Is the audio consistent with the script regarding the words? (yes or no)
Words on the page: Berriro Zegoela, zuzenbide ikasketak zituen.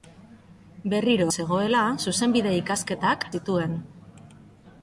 yes